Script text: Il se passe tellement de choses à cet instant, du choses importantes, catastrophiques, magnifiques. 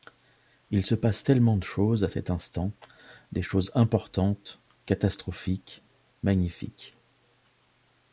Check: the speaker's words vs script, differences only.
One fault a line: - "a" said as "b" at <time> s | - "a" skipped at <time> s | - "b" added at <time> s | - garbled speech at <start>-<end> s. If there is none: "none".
- "du" said as "des" at 3.3 s